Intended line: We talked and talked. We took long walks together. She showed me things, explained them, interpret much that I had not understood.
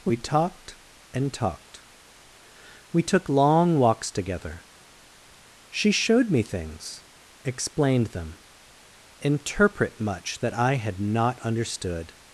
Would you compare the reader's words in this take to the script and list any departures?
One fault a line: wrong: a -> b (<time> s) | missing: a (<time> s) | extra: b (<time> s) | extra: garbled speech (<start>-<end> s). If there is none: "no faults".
no faults